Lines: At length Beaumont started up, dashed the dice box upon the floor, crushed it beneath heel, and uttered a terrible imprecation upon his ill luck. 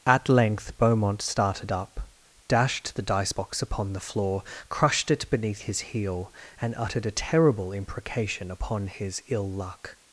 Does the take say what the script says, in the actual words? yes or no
no